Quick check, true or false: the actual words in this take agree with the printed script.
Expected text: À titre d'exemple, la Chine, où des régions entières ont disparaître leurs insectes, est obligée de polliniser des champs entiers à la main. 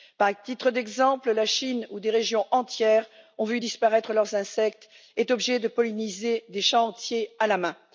false